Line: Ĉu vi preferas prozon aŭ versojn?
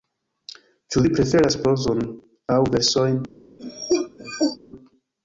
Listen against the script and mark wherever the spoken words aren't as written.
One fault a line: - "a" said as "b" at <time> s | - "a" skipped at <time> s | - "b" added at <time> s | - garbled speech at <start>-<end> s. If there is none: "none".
none